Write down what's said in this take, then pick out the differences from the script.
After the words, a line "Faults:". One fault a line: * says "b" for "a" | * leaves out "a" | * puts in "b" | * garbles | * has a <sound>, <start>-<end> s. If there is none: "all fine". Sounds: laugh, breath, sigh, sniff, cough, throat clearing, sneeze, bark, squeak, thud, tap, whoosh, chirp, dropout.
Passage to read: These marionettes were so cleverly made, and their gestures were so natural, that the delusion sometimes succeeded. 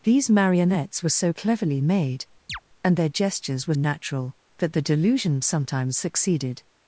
These marionettes were so cleverly made, and their gestures were natural, that the delusion sometimes succeeded.
Faults:
* has a chirp, 2.5-2.6 s
* leaves out "so"